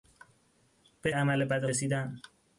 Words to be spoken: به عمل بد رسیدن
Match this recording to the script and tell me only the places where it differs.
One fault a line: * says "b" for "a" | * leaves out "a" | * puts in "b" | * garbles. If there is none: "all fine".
all fine